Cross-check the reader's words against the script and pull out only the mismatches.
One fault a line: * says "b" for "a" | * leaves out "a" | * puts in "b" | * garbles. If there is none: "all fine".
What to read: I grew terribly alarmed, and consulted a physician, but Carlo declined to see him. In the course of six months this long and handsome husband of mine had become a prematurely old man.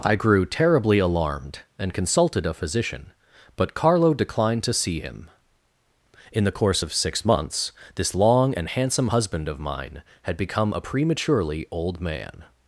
all fine